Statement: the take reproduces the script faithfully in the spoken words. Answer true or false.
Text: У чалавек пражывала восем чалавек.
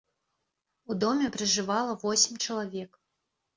false